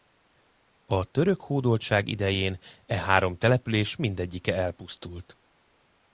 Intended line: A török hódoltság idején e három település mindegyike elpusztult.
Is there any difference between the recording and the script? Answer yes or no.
no